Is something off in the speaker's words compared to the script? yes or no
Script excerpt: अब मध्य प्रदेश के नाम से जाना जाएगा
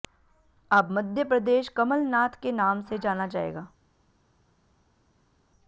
yes